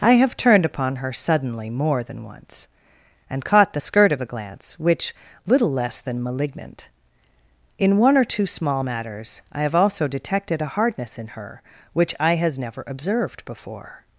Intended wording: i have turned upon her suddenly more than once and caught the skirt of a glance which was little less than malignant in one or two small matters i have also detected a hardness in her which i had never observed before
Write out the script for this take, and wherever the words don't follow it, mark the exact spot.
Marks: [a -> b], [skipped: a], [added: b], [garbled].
i have turned upon her suddenly more than once and caught the skirt of a glance which [skipped: was] little less than malignant in one or two small matters i have also detected a hardness in her which i [had -> has] never observed before